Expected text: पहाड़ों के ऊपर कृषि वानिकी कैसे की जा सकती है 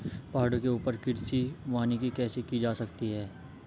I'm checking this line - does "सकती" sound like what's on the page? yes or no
yes